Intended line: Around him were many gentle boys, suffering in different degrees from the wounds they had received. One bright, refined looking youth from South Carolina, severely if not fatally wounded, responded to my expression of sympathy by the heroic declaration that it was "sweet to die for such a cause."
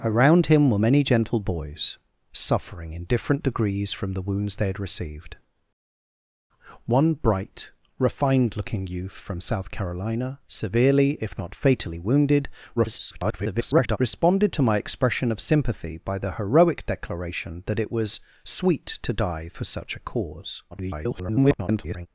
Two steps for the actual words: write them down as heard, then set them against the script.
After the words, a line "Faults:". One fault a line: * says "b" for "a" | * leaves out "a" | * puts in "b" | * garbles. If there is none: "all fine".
Around him were many gentle boys, suffering in different degrees from the wounds they had received. One bright, refined looking youth from South Carolina, severely if not fatally wounded, [garbled] responded to my expression of sympathy by the heroic declaration that it was "sweet to die for such a cause." [garbled]
Faults:
* garbles
* garbles